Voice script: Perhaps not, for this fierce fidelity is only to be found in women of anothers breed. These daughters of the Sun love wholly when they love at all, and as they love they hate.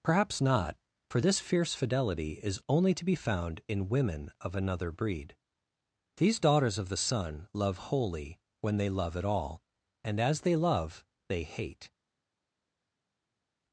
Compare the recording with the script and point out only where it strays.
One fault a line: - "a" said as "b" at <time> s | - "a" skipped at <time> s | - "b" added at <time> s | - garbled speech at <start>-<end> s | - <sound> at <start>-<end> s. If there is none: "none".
- "anothers" said as "another" at 4.5 s